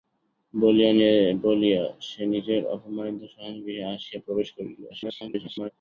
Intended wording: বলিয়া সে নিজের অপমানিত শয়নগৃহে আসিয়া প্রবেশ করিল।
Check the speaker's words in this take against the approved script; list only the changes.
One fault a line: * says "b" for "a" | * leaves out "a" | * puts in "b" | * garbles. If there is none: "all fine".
* garbles